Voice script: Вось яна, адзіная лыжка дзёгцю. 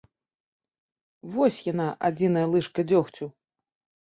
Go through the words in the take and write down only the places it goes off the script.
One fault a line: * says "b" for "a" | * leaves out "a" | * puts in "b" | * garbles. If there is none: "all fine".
all fine